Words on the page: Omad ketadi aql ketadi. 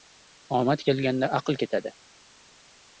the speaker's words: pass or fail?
fail